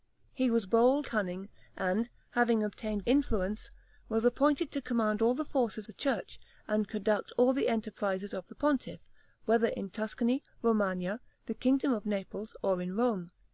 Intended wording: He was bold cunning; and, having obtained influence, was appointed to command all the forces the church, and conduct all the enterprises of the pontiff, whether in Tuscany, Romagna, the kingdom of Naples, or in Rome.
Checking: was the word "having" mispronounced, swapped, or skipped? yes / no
no